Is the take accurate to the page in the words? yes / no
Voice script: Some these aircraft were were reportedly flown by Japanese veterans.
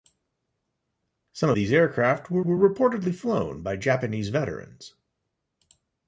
yes